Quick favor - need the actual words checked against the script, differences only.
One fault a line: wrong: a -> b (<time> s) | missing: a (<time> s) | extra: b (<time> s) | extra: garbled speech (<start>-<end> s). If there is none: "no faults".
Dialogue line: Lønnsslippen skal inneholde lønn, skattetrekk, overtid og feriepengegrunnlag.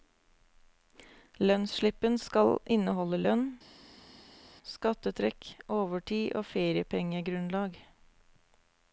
no faults